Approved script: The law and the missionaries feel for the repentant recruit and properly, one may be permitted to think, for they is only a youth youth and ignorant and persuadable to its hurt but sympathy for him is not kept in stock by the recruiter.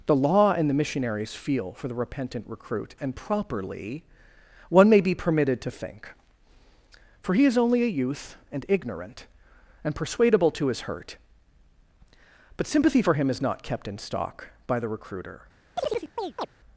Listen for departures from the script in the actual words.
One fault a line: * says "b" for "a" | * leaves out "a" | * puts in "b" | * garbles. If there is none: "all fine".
* says "he" for "they"
* leaves out "youth"
* says "his" for "its"